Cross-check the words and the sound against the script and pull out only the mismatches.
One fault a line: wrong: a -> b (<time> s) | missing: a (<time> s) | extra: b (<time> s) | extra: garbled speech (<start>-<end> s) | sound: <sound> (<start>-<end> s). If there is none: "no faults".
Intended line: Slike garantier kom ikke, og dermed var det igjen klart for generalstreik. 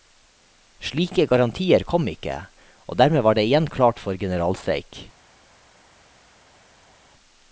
no faults